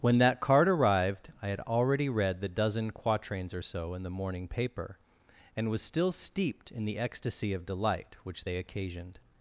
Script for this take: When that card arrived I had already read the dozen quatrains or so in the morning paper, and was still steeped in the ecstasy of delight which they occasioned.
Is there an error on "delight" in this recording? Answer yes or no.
no